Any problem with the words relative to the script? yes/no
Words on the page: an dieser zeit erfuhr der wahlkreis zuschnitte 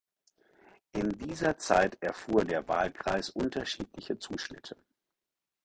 yes